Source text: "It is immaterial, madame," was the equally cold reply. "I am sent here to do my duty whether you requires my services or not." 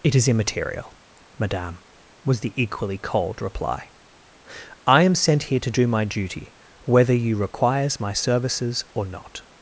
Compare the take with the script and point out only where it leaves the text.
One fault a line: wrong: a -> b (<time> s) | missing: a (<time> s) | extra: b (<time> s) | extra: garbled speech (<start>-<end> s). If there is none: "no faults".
no faults